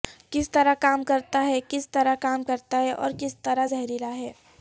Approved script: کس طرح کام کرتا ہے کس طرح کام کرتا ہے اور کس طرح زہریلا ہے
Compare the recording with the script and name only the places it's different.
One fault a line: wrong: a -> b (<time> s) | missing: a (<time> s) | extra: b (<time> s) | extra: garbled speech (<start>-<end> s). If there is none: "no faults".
no faults